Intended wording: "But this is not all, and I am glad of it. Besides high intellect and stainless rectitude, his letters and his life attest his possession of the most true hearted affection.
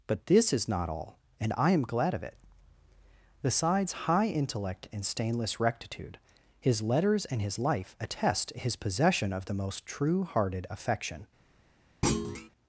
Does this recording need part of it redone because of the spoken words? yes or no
no